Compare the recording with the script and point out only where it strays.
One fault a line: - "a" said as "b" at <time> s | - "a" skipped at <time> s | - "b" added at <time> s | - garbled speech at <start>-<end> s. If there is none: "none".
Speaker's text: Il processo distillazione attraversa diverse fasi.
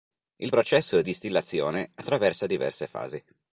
none